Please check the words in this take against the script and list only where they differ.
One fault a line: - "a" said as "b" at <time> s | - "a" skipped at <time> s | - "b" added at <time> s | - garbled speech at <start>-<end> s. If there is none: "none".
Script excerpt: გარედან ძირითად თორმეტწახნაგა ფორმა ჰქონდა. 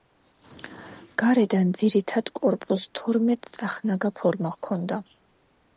- "კორპუსს" added at 2.4 s